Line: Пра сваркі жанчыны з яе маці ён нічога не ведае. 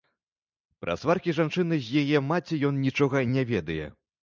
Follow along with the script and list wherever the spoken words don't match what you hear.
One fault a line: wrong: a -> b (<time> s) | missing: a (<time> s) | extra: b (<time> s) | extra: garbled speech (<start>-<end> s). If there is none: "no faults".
no faults